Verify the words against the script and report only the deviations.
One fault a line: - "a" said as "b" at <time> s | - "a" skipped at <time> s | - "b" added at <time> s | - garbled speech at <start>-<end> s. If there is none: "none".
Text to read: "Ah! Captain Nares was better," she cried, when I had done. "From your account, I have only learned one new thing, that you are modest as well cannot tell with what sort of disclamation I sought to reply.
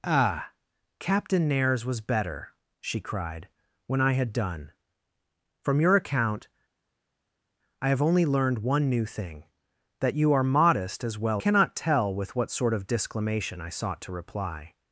none